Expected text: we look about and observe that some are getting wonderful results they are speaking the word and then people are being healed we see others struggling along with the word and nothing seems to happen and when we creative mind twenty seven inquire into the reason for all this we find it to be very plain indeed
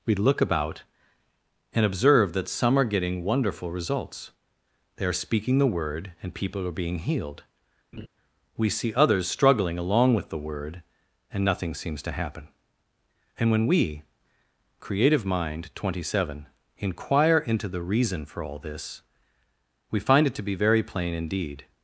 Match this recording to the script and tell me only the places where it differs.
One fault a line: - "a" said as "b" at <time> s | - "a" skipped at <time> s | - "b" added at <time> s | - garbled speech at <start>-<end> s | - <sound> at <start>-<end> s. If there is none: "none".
- "then" skipped at 6.3 s
- laugh at 7.9-8.1 s